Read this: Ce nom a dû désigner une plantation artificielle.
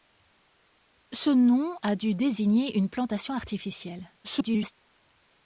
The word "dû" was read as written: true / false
true